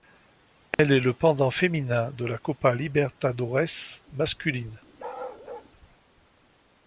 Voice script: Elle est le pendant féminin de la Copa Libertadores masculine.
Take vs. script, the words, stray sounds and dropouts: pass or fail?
fail